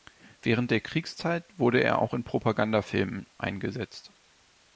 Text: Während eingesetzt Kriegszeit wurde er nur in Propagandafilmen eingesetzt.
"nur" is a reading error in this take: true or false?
true